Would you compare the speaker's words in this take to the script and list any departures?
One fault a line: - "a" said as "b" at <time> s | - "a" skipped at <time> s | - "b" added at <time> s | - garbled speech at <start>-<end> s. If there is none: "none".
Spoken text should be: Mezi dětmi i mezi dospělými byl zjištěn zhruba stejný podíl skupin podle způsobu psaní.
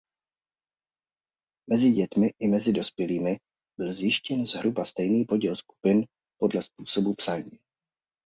none